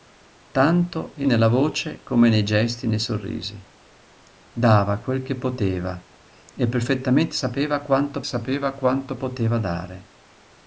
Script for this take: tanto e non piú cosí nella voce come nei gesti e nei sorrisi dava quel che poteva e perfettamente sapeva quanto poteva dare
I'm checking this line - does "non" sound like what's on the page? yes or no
no